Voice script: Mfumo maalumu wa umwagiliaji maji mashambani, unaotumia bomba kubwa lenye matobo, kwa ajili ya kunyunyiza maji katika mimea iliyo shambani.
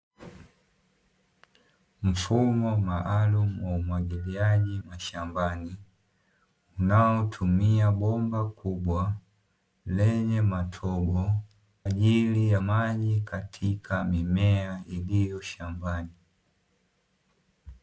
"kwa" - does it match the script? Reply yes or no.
no